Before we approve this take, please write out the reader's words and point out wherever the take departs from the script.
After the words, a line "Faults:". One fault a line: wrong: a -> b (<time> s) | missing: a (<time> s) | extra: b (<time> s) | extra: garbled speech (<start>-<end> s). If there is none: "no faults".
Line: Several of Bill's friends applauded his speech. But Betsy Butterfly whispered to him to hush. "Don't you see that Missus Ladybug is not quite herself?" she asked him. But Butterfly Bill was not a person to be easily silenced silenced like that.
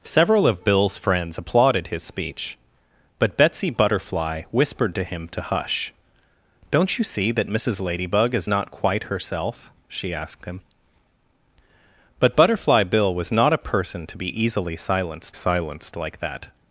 Several of Bill's friends applauded his speech. But Betsy Butterfly whispered to him to hush. "Don't you see that Missus Ladybug is not quite herself?" she asked him. But Butterfly Bill was not a person to be easily silenced silenced like that.
Faults:
no faults